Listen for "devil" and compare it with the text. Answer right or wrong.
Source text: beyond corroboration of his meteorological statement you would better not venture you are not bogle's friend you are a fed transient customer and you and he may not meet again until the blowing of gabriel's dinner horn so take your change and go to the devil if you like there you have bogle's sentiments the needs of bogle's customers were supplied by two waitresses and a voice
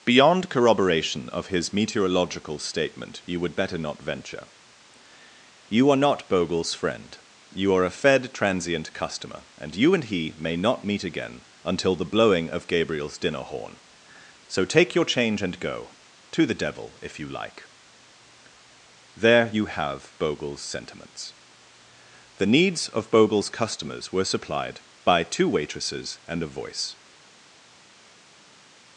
right